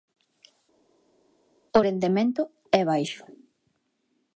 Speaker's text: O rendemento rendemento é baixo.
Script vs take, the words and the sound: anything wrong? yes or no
yes